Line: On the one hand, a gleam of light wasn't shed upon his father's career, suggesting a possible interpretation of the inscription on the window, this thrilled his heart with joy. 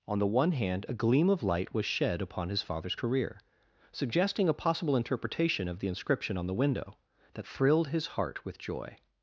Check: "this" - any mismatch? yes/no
yes